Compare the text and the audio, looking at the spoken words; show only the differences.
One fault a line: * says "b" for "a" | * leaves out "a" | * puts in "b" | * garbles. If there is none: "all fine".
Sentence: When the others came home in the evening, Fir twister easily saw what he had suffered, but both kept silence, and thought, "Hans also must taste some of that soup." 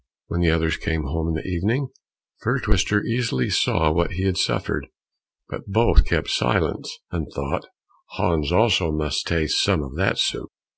all fine